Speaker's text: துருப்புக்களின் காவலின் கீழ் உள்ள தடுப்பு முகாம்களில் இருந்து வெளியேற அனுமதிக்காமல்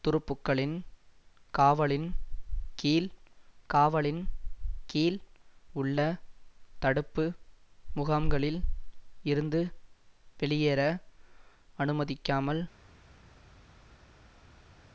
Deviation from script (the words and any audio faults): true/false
true